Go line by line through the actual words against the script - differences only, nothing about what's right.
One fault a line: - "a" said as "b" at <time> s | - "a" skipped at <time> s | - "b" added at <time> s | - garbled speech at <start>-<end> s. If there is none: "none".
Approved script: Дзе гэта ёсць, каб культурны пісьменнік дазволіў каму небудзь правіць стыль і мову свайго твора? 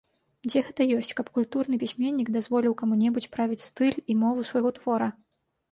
none